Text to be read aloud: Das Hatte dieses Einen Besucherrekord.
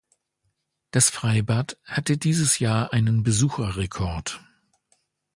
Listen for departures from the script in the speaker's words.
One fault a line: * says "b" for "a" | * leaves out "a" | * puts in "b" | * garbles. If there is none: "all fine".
* puts in "Freibad"
* puts in "Jahr"